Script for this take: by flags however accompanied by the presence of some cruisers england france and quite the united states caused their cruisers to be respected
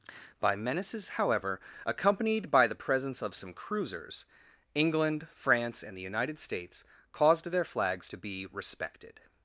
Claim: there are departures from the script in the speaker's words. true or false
true